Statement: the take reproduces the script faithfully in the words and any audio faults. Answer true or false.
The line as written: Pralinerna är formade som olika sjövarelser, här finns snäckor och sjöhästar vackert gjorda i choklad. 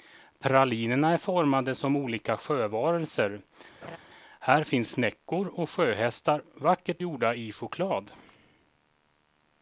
false